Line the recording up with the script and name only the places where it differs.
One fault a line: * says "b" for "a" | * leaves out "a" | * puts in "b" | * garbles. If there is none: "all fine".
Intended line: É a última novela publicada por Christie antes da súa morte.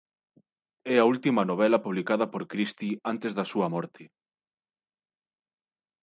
all fine